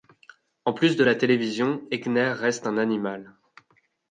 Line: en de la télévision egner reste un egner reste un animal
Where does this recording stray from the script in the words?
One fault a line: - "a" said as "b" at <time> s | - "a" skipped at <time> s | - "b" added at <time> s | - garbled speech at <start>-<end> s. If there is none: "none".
- "plus" added at 0.7 s
- "egner reste un" skipped at 2.8 s